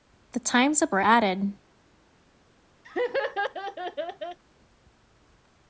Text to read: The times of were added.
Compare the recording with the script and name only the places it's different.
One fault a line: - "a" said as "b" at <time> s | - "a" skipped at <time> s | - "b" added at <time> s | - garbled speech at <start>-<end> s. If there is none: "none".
none